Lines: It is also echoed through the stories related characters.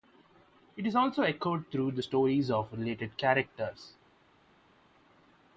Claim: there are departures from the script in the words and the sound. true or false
true